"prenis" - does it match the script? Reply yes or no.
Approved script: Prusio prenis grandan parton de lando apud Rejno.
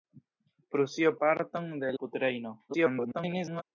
no